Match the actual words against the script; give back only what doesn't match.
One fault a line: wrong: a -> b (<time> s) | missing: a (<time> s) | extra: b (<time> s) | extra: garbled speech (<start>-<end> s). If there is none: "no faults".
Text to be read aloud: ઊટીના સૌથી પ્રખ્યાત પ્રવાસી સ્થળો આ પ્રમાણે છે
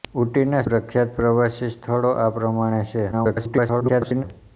missing: સૌથી (0.6 s)
extra: garbled speech (3.1-4.2 s)